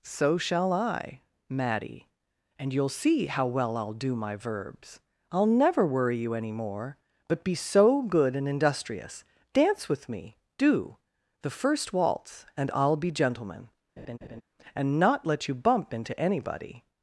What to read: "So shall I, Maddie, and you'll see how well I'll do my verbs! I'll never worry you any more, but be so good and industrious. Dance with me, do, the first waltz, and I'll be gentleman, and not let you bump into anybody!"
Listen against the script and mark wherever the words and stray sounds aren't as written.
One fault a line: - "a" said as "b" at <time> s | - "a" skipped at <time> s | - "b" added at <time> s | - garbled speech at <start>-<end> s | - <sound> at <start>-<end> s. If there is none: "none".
- laugh at 14.0-14.4 s